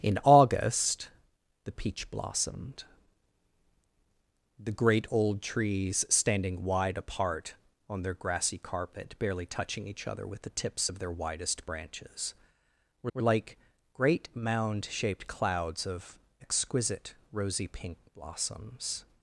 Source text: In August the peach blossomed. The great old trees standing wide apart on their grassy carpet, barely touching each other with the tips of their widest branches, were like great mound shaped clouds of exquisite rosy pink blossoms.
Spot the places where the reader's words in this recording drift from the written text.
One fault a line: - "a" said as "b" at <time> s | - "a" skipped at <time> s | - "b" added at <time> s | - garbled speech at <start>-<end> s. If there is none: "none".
- "were" added at 13.1 s